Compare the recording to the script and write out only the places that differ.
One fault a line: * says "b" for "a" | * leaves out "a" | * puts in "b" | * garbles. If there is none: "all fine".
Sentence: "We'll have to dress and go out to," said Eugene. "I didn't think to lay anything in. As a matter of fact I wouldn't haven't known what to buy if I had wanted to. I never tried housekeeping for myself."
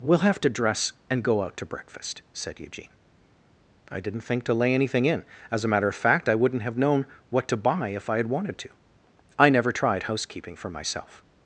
* puts in "breakfast"
* says "have" for "haven't"